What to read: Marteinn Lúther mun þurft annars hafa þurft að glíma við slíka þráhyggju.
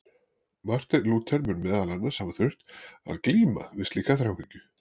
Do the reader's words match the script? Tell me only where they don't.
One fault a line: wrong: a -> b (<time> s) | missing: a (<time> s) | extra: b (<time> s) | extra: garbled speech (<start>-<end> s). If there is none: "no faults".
wrong: þurft -> meðal (1.7 s)